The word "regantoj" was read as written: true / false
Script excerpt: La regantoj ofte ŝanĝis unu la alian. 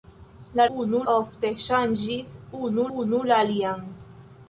false